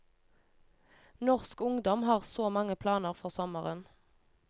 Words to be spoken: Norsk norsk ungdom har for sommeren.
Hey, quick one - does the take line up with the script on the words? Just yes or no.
no